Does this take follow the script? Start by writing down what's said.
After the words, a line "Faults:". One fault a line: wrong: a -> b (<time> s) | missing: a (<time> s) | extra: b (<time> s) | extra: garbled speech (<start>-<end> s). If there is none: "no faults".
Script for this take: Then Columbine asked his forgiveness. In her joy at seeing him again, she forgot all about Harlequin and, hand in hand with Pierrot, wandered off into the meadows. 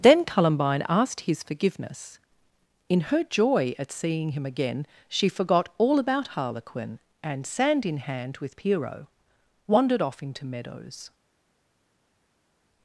Then Columbine asked his forgiveness. In her joy at seeing him again, she forgot all about Harlequin and, sand in hand with Pierrot, wandered off into meadows.
Faults:
wrong: hand -> sand (7.5 s)
missing: the (10.5 s)